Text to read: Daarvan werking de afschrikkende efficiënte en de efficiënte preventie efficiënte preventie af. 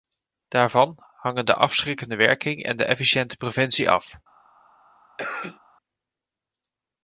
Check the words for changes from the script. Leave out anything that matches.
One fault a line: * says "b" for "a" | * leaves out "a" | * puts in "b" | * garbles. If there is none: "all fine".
* says "hangen" for "werking"
* says "werking" for "efficiënte"
* leaves out "efficiënte preventie"